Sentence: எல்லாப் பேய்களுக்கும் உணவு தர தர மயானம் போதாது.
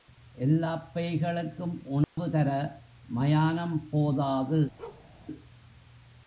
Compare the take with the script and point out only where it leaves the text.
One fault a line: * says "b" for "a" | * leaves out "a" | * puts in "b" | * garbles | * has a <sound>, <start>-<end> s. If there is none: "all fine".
* has a dropout, 2.0-2.2 s
* leaves out "தர"
* has a bark, 4.8-5.1 s